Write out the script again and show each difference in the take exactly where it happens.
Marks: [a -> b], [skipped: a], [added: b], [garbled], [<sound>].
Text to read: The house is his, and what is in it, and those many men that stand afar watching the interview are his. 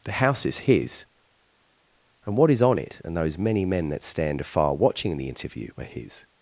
The house is his, and what is [in -> on] it, and those many men that stand afar watching the interview are his.